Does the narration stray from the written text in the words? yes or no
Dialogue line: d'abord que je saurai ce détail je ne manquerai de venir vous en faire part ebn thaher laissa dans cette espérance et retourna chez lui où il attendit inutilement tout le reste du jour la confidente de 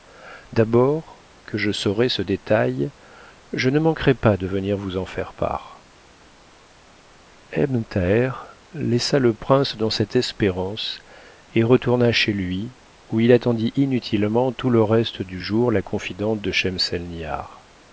yes